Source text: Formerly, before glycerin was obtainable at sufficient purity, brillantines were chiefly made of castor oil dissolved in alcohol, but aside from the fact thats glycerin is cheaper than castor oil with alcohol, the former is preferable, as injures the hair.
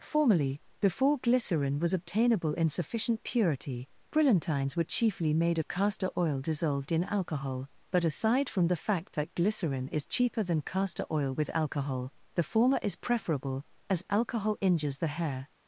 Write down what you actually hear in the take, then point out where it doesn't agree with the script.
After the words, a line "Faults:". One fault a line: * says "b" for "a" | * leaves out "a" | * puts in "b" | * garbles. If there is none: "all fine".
Formerly, before glycerin was obtainable in sufficient purity, brillantines were chiefly made of castor oil dissolved in alcohol, but aside from the fact that glycerin is cheaper than castor oil with alcohol, the former is preferable, as alcohol injures the hair.
Faults:
* says "in" for "at"
* says "that" for "thats"
* puts in "alcohol"